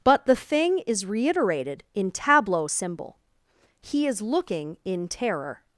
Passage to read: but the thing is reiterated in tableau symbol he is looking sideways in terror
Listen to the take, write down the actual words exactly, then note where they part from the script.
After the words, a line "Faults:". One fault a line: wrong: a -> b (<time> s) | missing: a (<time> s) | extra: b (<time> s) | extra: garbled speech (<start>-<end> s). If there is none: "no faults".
but the thing is reiterated in tableau symbol he is looking in terror
Faults:
missing: sideways (4.8 s)